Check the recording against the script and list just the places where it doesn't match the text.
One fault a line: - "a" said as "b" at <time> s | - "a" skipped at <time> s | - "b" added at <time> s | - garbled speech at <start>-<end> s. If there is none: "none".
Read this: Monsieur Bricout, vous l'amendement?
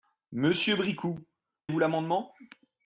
none